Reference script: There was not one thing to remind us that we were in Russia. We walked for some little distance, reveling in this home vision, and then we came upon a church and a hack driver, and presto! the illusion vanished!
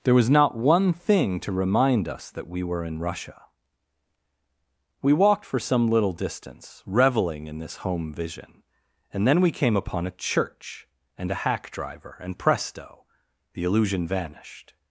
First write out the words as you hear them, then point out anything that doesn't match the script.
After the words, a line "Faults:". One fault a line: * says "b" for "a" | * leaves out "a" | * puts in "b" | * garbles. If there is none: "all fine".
There was not one thing to remind us that we were in Russia. We walked for some little distance, reveling in this home vision, and then we came upon a church and a hack driver, and presto! the illusion vanished!
Faults:
all fine